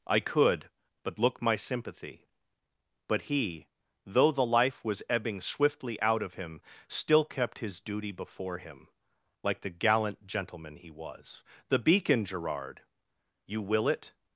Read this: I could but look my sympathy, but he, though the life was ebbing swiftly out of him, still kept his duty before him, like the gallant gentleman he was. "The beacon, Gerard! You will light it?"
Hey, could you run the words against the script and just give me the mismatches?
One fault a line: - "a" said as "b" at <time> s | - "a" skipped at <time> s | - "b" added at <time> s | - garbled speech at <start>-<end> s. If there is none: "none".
- "light" skipped at 13.9 s